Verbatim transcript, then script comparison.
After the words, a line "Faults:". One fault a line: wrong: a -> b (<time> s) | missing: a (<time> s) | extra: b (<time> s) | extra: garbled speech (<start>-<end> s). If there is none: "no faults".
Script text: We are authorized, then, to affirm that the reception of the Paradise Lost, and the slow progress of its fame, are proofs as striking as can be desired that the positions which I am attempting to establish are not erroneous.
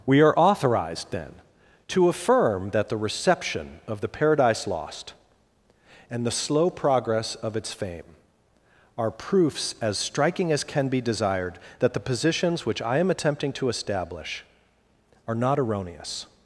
We are authorized, then, to affirm that the reception of the Paradise Lost, and the slow progress of its fame, are proofs as striking as can be desired that the positions which I am attempting to establish are not erroneous.
Faults:
no faults